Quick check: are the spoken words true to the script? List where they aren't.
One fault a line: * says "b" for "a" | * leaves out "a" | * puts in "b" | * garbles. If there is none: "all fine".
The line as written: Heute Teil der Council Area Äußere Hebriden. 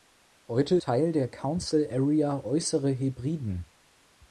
all fine